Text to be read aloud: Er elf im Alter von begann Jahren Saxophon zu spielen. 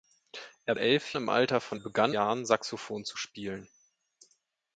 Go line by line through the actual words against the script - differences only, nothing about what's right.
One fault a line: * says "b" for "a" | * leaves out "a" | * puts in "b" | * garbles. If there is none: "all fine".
all fine